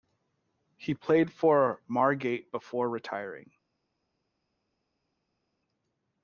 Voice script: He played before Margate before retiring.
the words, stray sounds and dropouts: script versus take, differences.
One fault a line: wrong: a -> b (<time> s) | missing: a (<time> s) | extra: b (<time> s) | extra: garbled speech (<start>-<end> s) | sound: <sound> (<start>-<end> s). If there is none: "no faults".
wrong: before -> for (1.3 s)